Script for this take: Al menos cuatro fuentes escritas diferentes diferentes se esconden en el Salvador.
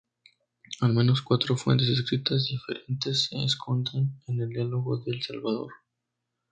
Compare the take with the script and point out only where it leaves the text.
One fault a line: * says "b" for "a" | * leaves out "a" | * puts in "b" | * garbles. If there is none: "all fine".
* leaves out "diferentes"
* puts in "Diálogo del"